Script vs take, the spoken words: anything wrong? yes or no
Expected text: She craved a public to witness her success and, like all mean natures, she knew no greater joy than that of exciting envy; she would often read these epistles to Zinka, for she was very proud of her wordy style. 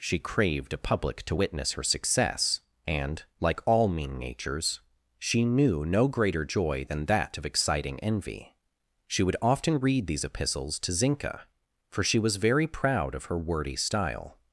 no